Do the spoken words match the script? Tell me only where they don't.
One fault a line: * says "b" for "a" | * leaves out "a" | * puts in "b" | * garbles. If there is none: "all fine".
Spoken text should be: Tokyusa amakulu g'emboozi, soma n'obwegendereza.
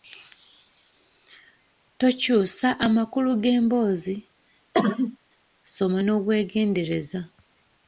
all fine